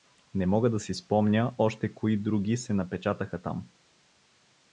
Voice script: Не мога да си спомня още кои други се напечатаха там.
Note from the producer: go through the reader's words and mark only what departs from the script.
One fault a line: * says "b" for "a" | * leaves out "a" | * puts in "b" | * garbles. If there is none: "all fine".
all fine